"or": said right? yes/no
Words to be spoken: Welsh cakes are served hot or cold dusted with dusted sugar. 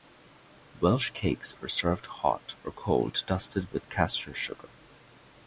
yes